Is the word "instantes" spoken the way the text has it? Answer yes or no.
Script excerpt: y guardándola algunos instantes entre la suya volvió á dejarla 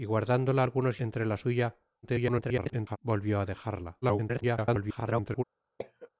no